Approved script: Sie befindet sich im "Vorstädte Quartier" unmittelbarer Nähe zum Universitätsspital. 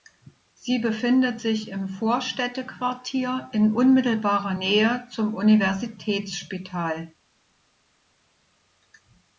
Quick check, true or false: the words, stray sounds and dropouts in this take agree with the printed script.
false